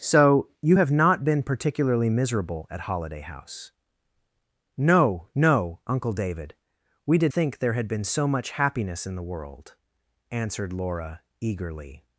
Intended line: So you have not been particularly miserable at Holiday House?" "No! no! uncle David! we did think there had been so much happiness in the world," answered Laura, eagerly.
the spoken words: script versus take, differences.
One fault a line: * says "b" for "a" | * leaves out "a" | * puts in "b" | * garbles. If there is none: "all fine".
all fine